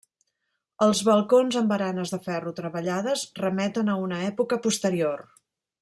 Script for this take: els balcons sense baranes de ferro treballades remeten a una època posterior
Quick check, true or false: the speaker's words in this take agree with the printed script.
false